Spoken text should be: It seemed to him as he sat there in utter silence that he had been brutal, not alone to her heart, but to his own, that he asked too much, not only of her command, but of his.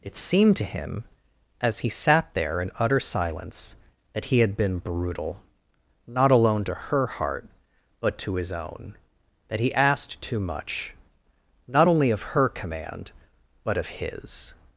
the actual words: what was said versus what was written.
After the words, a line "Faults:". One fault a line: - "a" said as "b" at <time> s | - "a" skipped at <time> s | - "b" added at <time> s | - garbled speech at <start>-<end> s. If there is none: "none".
It seemed to him as he sat there in utter silence that he had been brutal, not alone to her heart, but to his own, that he asked too much, not only of her command, but of his.
Faults:
none